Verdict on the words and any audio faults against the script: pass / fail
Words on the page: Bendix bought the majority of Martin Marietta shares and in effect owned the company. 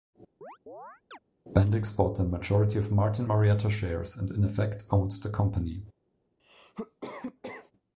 fail